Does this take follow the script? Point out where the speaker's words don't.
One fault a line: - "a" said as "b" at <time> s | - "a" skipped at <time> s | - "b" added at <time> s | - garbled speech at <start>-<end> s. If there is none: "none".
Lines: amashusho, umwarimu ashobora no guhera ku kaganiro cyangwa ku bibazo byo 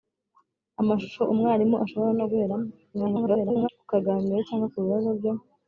- garbled speech at 2.9-3.7 s